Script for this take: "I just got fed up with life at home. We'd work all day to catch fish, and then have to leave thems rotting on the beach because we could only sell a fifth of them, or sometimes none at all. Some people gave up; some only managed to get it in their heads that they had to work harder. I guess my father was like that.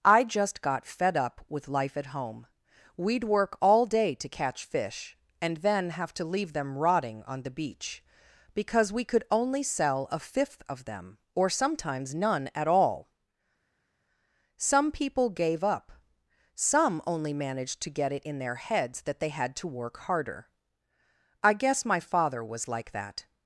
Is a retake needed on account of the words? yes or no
yes